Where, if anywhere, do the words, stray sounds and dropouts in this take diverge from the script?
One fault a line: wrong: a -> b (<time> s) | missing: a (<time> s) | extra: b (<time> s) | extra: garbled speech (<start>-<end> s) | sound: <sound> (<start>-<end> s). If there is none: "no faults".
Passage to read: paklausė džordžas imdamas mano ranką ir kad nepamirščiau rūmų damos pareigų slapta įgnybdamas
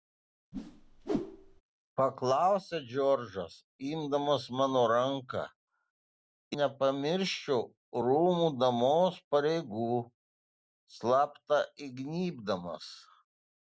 sound: whoosh (0.5-1.6 s)
missing: ir kad (5.4 s)